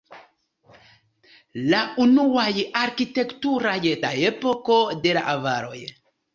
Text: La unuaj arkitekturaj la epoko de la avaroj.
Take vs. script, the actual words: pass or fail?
pass